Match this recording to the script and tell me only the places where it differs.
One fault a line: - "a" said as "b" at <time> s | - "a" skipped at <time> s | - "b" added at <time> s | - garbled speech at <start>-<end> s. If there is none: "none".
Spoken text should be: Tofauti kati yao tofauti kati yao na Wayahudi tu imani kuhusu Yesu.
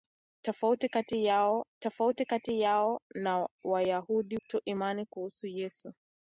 none